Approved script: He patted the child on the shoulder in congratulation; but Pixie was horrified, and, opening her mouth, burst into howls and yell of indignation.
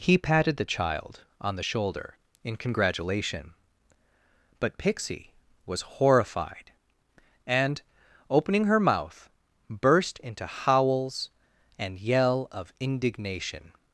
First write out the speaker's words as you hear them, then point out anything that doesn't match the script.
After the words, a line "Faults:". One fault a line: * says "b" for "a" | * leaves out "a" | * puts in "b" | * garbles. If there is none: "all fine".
He patted the child on the shoulder in congratulation; but Pixie was horrified, and, opening her mouth, burst into howls and yell of indignation.
Faults:
all fine